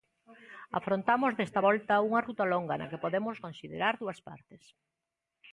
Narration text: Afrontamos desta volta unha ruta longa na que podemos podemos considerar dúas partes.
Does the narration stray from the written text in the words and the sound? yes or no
yes